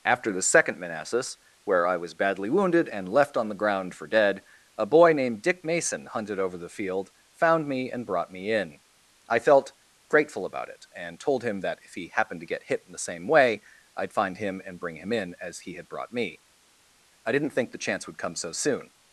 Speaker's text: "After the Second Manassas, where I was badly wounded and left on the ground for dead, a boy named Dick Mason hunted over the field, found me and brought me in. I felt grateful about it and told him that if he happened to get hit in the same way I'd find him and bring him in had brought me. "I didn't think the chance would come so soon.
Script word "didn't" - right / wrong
right